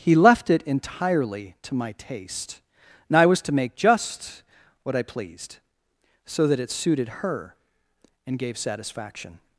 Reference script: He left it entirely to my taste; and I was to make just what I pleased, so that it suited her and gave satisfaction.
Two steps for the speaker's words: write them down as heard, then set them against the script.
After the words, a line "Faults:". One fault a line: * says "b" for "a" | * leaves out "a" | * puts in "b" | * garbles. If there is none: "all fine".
He left it entirely to my taste; and I was to make just what I pleased, so that it suited her and gave satisfaction.
Faults:
all fine